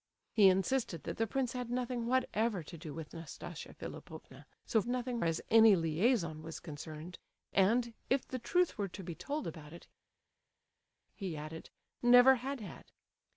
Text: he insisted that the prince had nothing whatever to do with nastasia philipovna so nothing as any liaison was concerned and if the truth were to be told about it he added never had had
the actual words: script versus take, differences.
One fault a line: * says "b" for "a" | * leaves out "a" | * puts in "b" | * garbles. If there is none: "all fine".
all fine